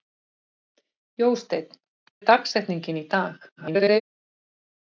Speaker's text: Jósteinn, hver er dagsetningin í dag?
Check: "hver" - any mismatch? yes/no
yes